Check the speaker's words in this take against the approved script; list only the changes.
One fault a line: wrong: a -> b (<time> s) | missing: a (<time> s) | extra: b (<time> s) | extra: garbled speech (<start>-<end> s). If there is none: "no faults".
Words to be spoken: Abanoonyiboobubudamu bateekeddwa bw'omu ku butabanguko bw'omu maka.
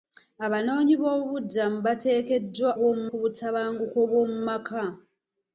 no faults